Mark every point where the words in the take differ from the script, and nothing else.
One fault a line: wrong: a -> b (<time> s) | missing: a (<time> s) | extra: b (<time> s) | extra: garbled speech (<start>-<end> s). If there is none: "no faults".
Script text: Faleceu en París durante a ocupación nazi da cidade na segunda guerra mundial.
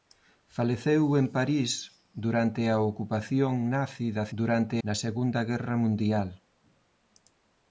wrong: cidade -> durante (4.4 s)